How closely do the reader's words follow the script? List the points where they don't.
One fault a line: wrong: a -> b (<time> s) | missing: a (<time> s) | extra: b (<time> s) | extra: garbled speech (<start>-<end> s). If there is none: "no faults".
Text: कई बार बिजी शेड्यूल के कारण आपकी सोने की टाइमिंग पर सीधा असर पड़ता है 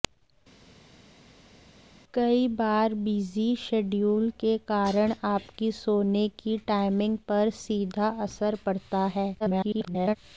extra: garbled speech (9.4-10.2 s)